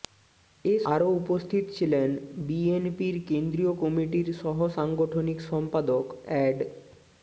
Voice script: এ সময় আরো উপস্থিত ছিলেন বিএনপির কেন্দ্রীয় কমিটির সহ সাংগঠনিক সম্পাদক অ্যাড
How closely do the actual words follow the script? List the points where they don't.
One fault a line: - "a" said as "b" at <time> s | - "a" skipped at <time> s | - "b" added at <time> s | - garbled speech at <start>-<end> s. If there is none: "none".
- "সময়" skipped at 0.8 s